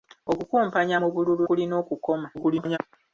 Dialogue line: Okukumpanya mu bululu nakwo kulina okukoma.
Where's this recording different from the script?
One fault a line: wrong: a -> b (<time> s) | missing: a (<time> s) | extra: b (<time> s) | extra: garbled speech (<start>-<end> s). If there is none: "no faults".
missing: nakwo (1.4 s)
extra: garbled speech (2.3-2.8 s)